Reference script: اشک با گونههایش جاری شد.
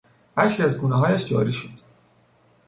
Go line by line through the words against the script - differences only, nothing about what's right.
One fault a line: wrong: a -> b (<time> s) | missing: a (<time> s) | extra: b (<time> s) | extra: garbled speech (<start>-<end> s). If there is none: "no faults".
wrong: با -> از (0.6 s)